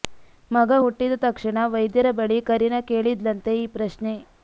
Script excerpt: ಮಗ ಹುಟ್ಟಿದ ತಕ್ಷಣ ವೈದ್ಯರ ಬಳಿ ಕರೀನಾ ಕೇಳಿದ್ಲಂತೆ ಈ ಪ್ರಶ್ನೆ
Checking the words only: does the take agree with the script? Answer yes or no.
yes